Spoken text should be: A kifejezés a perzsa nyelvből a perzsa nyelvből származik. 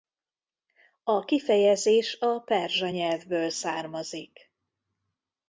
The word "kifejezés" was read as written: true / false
true